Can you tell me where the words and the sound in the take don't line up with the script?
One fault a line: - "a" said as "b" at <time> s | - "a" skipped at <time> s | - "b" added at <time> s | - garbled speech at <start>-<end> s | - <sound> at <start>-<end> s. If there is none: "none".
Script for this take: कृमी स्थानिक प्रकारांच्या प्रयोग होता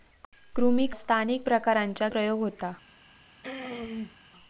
- throat clearing at 3.4-4.2 s